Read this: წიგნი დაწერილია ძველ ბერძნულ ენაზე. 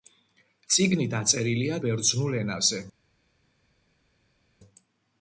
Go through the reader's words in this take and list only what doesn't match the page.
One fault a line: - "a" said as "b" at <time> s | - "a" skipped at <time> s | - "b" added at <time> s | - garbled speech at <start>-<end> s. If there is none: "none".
- "ძველ" skipped at 1.8 s